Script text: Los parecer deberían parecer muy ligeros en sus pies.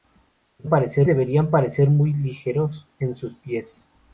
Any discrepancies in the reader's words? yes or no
no